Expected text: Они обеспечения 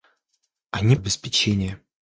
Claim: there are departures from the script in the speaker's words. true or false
false